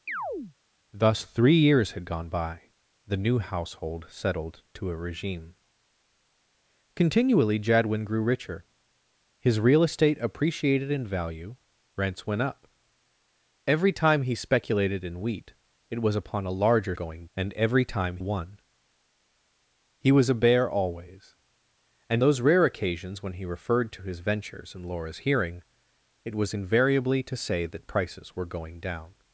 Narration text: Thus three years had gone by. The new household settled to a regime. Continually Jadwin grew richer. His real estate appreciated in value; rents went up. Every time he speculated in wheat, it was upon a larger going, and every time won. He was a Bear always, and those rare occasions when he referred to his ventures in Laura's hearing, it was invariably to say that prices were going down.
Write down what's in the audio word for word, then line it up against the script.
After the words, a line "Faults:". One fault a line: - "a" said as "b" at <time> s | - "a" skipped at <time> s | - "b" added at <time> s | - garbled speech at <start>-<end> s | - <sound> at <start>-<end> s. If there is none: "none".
Thus three years had gone by. The new household settled to a regime. Continually Jadwin grew richer. His real estate appreciated in value; rents went up. Every time he speculated in wheat, it was upon a larger going, and every time won. He was a Bear always, and those rare occasions when he referred to his ventures in Laura's hearing, it was invariably to say that prices were going down.
Faults:
- chirp at 0.1-0.6 s